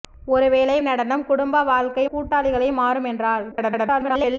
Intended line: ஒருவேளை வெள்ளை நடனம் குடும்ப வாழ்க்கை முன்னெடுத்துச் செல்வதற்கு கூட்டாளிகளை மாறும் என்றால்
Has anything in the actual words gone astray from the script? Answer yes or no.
yes